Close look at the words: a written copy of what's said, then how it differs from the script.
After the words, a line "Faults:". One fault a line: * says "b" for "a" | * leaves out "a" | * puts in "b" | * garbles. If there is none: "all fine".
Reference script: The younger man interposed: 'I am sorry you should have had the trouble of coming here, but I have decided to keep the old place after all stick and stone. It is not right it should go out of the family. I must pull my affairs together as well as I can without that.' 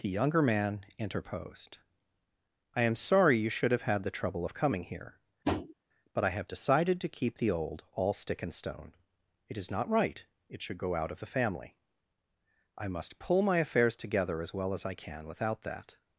The younger man interposed: 'I am sorry you should have had the trouble of coming here, but I have decided to keep the old all stick and stone. It is not right it should go out of the family. I must pull my affairs together as well as I can without that.'
Faults:
* leaves out "place after"